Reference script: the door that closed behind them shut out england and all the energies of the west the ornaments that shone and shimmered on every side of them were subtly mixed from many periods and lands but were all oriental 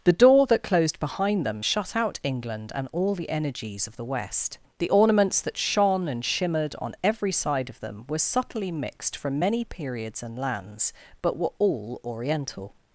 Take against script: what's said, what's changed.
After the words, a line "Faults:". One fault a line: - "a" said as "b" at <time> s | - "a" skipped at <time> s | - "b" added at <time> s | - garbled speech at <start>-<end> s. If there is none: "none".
the door that closed behind them shut out england and all the energies of the west the ornaments that shone and shimmered on every side of them were subtly mixed from many periods and lands but were all oriental
Faults:
none